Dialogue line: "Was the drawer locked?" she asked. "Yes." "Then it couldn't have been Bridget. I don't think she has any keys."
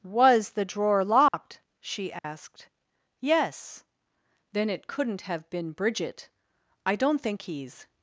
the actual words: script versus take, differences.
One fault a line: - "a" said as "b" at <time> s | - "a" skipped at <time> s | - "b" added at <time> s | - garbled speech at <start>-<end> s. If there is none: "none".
- "she has any" skipped at 7.4 s